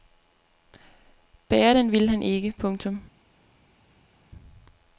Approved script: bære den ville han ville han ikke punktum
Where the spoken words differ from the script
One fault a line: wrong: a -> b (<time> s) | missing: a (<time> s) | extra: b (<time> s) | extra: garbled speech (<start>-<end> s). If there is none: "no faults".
missing: ville han (2.2 s)